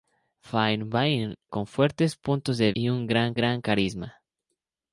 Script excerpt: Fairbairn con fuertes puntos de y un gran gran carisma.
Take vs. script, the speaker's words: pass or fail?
pass